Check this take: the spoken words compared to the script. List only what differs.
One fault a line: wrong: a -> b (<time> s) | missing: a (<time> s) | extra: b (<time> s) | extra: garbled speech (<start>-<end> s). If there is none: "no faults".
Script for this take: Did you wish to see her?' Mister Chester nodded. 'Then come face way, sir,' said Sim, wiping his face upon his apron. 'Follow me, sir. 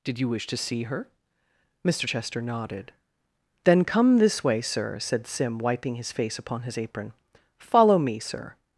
wrong: face -> this (4.2 s)